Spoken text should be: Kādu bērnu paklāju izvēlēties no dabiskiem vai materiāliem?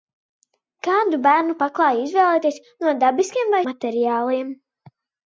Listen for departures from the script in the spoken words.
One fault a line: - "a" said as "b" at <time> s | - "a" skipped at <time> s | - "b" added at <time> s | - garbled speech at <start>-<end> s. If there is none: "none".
none